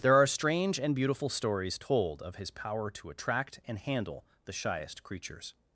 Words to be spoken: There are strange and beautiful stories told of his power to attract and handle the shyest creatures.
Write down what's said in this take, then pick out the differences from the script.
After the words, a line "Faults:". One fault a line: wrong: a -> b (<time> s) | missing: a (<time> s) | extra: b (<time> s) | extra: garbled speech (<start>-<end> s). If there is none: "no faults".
There are strange and beautiful stories told of his power to attract and handle the shyest creatures.
Faults:
no faults